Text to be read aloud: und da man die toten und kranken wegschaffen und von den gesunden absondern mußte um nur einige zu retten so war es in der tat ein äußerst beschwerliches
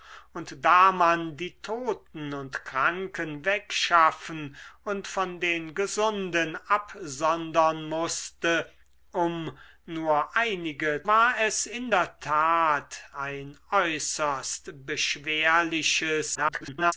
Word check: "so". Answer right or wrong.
wrong